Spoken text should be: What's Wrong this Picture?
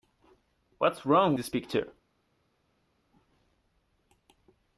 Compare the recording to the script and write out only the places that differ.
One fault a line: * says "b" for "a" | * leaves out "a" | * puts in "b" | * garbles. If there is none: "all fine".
all fine